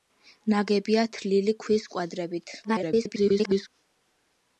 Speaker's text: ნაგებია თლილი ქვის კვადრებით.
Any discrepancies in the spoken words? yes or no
yes